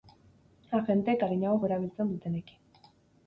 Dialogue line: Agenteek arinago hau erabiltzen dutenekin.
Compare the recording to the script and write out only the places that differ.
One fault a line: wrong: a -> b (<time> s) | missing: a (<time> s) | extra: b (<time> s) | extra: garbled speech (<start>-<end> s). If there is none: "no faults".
no faults